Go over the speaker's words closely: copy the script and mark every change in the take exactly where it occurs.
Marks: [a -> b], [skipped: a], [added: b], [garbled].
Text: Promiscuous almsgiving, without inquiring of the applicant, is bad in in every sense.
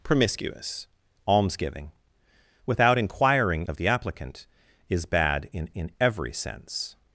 Promiscuous almsgiving, without inquiring of the applicant, is bad in in every sense.